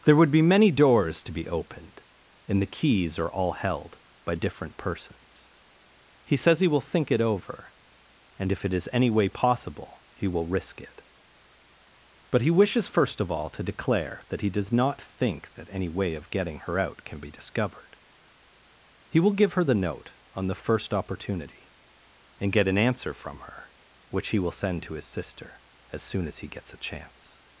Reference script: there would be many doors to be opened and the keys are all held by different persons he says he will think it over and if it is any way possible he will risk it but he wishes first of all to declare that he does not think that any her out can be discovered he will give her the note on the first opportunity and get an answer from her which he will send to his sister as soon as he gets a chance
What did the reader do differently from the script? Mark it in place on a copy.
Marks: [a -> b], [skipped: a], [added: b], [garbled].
there would be many doors to be opened and the keys are all held by different persons he says he will think it over and if it is any way possible he will risk it but he wishes first of all to declare that he does not think that any [added: way of getting] her out can be discovered he will give her the note on the first opportunity and get an answer from her which he will send to his sister as soon as he gets a chance